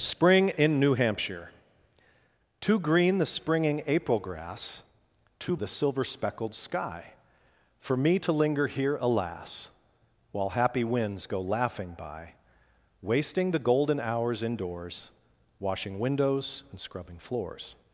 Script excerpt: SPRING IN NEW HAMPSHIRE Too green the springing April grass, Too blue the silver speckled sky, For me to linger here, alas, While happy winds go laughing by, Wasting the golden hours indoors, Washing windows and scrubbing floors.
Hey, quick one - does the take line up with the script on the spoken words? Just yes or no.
no